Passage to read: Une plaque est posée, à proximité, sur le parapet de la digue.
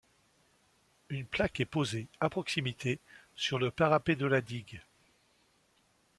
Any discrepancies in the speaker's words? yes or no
no